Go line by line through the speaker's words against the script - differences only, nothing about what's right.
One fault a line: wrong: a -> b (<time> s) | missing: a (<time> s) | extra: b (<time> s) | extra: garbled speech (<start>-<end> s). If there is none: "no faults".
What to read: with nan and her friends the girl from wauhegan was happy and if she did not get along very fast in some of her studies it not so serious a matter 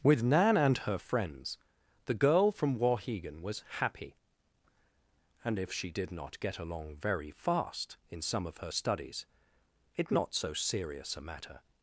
no faults